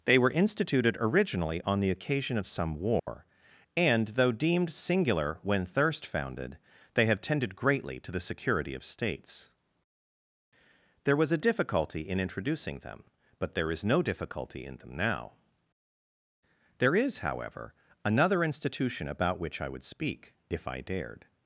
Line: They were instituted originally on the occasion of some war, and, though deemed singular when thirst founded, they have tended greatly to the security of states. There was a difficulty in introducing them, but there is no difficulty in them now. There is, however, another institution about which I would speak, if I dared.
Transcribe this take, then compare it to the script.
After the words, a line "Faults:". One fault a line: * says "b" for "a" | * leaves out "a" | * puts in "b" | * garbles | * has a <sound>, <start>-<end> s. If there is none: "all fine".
They were instituted originally on the occasion of some war, and, though deemed singular when thirst founded, they have tended greatly to the security of states. There was a difficulty in introducing them, but there is no difficulty in them now. There is, however, another institution about which I would speak, if I dared.
Faults:
* has a dropout, 3.0-3.1 s